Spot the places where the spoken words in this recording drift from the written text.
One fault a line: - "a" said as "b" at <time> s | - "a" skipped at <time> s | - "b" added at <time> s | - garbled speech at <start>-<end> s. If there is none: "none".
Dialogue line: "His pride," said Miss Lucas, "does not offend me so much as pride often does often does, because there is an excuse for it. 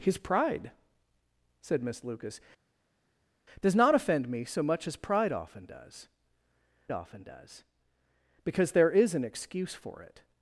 none